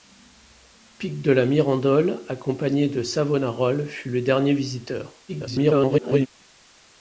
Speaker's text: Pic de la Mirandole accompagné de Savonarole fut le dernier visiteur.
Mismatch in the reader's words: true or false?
true